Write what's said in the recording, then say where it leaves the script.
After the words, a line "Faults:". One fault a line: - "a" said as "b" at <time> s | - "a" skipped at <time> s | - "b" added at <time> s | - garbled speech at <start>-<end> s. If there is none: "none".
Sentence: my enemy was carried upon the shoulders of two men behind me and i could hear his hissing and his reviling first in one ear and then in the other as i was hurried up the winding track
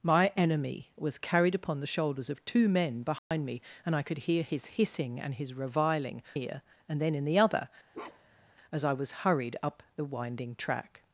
my enemy was carried upon the shoulders of two men behind me and i could hear his hissing and his reviling ear and then in the other as i was hurried up the winding track
Faults:
- "first in one" skipped at 6.2 s